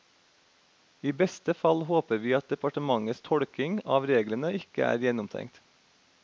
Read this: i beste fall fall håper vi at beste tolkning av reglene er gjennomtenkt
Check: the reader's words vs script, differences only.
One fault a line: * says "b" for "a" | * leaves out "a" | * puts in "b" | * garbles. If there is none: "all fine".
* leaves out "fall"
* says "departementets" for "beste"
* puts in "ikke"